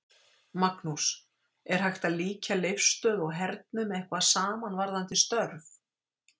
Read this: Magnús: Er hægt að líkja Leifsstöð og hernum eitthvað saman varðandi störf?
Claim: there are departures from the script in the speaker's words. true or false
false